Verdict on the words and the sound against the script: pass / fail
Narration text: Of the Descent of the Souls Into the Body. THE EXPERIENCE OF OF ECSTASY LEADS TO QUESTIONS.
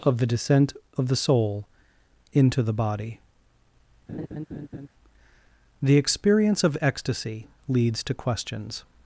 fail